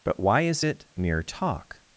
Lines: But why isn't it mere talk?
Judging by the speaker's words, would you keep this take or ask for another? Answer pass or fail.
fail